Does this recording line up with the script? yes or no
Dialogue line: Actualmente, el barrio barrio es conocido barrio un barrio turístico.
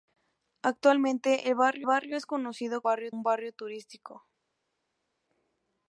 yes